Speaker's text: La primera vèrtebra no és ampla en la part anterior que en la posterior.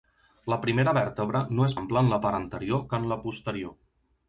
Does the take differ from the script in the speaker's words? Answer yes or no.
no